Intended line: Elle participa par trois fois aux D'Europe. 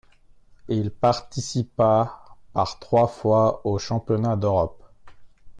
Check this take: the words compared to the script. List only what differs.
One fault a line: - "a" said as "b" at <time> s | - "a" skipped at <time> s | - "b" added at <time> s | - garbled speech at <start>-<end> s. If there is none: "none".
- "Elle" said as "Il" at 0.7 s
- "Championnats" added at 3.8 s